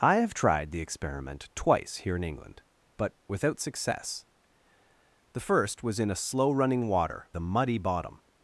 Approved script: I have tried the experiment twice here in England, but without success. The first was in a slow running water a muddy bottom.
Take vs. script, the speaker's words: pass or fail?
pass